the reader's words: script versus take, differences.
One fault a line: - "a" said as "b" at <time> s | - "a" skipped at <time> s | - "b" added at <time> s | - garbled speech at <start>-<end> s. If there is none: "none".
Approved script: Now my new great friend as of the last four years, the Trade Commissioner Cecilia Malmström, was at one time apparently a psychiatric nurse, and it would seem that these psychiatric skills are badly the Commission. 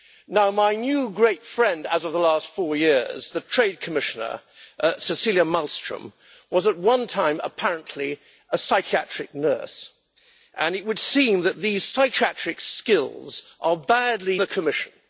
none